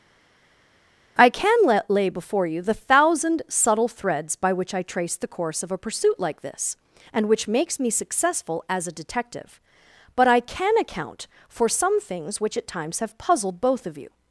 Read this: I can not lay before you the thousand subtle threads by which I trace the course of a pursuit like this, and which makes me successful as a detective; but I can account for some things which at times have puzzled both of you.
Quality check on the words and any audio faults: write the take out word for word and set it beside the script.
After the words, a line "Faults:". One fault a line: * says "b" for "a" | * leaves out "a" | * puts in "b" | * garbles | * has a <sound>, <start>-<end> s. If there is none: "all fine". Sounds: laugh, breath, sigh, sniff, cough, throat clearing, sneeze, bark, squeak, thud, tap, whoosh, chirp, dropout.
I can let lay before you the thousand subtle threads by which I trace the course of a pursuit like this, and which makes me successful as a detective; but I can account for some things which at times have puzzled both of you.
Faults:
* says "let" for "not"